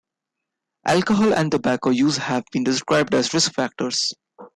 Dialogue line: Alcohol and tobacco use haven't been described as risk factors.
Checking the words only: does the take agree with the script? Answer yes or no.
no